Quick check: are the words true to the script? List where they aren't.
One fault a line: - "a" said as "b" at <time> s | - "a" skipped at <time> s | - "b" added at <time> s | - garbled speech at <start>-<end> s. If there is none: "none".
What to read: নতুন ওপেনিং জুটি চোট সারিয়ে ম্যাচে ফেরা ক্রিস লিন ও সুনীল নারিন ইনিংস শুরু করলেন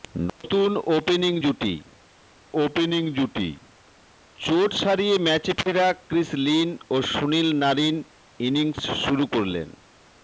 - "ওপেনিং জুটি" added at 2.6 s